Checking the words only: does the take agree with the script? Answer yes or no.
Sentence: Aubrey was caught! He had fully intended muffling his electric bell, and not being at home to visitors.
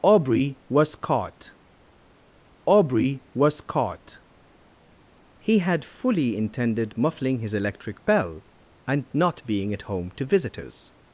no